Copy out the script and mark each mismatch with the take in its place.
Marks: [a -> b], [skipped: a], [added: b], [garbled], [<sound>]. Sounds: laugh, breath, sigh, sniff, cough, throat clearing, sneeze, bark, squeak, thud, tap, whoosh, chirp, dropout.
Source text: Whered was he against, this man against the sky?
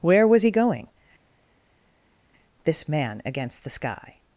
[Whered -> Where] was he [against, -> going] this man against the sky?